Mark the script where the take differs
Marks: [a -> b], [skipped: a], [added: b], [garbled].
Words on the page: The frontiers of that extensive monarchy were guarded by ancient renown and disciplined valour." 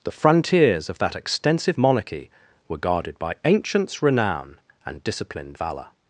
The frontiers of that extensive monarchy were guarded by [ancient -> ancients] renown and disciplined valour."